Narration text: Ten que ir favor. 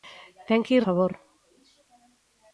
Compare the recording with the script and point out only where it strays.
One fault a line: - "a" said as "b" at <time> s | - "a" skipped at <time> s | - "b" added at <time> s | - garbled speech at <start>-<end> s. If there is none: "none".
none